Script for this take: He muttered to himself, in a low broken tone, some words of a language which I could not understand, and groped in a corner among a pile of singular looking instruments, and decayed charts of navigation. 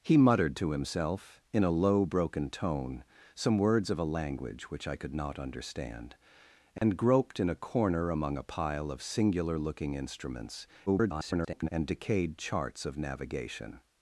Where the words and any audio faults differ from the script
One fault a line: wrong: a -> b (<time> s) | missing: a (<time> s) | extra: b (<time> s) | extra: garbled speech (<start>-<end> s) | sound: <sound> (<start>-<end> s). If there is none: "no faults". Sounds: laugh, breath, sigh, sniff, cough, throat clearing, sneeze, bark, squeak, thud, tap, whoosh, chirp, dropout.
sound: dropout (6.8-6.8 s)
extra: garbled speech (10.9-11.7 s)